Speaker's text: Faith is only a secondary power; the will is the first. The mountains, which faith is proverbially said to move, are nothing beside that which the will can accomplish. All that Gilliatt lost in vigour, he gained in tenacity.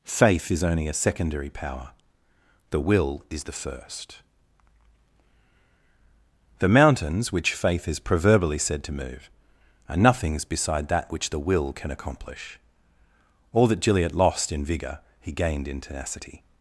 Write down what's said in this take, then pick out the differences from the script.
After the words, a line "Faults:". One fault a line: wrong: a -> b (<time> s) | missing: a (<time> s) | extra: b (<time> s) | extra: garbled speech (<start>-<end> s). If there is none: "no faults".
Faith is only a secondary power; the will is the first. The mountains, which faith is proverbially said to move, are nothings beside that which the will can accomplish. All that Gilliatt lost in vigour, he gained in tenacity.
Faults:
wrong: nothing -> nothings (10.0 s)